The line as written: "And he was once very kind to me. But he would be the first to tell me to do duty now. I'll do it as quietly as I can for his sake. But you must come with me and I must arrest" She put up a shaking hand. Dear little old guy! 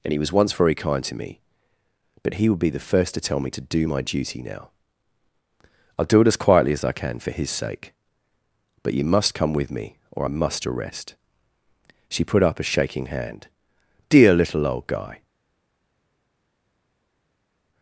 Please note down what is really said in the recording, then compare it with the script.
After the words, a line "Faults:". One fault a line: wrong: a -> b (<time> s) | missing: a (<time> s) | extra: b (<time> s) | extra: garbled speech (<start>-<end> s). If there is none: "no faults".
"And he was once very kind to me. But he would be the first to tell me to do my duty now. I'll do it as quietly as I can for his sake. But you must come with me or I must arrest" She put up a shaking hand. Dear little old guy!
Faults:
extra: my (3.9 s)
wrong: and -> or (10.1 s)